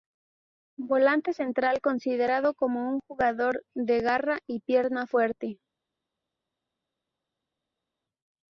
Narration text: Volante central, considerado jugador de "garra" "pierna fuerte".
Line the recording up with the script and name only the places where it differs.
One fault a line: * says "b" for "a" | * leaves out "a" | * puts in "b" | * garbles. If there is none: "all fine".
* puts in "como un"
* puts in "y"